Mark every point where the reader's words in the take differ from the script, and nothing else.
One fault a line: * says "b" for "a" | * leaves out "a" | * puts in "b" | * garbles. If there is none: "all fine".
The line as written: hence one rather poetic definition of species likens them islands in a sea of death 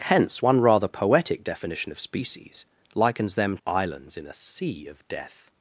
all fine